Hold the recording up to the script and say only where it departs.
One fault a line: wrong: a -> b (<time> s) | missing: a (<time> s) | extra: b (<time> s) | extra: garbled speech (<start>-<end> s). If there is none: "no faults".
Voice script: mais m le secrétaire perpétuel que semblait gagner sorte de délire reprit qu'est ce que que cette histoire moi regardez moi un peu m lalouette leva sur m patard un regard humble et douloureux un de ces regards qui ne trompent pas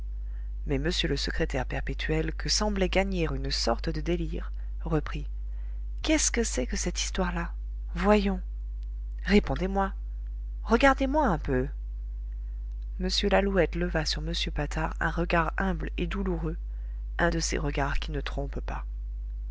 extra: une (3.3 s)
extra: c'est (6.4 s)
extra: là voyons répondez (7.3 s)